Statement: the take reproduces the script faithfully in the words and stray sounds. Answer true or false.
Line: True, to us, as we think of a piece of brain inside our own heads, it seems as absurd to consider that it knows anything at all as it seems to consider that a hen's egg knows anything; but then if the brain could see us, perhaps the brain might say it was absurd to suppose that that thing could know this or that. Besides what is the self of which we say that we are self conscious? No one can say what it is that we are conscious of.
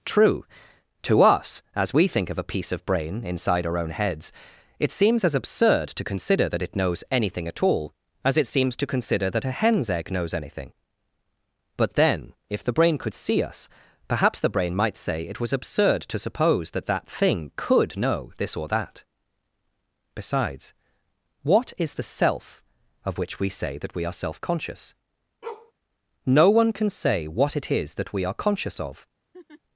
false